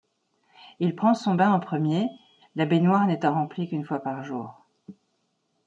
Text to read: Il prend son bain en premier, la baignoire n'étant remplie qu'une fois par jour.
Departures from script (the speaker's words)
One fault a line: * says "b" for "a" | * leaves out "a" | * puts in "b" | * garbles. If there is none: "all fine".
all fine